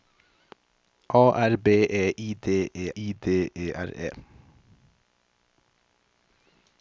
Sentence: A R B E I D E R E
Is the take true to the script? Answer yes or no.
no